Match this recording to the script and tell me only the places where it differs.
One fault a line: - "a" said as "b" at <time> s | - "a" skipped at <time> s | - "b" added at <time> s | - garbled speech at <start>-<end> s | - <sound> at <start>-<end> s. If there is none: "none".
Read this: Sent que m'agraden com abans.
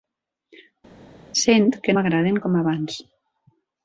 none